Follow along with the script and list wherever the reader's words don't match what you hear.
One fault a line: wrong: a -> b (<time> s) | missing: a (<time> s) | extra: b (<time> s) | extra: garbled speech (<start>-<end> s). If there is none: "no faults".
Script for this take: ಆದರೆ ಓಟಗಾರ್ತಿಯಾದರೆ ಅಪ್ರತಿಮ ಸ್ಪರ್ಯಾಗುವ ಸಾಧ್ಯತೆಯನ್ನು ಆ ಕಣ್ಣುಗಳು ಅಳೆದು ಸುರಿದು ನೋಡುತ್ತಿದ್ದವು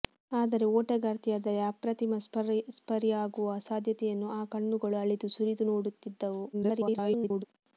extra: garbled speech (6.5-7.5 s)